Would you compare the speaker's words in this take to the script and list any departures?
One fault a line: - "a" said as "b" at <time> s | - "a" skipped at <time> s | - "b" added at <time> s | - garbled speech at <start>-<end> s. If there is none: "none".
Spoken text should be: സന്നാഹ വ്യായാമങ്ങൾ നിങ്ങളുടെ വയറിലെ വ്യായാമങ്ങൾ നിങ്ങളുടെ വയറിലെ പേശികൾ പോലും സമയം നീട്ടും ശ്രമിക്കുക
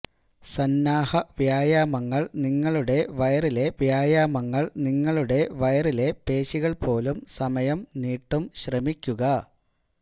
none